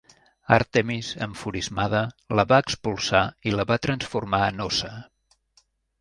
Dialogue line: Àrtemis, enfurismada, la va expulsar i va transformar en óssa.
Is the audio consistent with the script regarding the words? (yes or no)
no